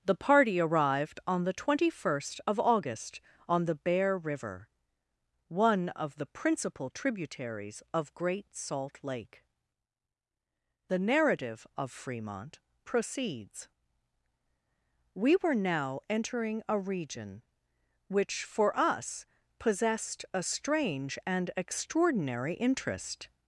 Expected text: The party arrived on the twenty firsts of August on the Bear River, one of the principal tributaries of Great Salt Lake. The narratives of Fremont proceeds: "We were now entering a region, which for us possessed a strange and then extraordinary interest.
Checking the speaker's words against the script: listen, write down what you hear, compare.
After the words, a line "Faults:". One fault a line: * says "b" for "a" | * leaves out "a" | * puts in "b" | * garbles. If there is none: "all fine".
The party arrived on the twenty first of August on the Bear River, one of the principal tributaries of Great Salt Lake. The narrative of Fremont proceeds: "We were now entering a region, which for us possessed a strange and extraordinary interest.
Faults:
* says "first" for "firsts"
* says "narrative" for "narratives"
* leaves out "then"